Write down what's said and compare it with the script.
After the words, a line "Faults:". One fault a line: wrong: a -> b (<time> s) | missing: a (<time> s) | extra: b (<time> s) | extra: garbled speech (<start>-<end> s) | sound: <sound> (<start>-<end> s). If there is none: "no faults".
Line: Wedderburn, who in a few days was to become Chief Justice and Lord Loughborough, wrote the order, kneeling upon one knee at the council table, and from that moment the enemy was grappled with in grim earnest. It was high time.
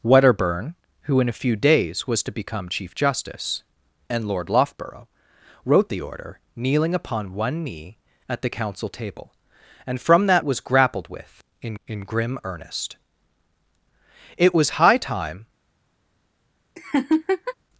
Wedderburn, who in a few days was to become Chief Justice and Lord Loughborough, wrote the order, kneeling upon one knee at the council table, and from that was grappled with in in grim earnest. It was high time.
Faults:
missing: moment the enemy (10.5 s)
extra: in (11.9 s)
sound: laugh (16.8-17.5 s)